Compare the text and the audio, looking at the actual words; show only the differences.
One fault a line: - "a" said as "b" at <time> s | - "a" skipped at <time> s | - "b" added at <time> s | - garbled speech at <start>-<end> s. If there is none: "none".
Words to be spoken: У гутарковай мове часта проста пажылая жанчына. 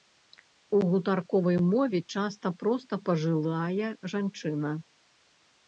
none